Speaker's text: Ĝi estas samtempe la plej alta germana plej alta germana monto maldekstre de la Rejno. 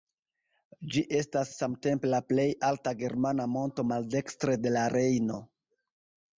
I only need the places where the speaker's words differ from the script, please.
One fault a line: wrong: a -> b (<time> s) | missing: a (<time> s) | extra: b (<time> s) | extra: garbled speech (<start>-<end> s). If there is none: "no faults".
missing: plej alta germana (3.5 s)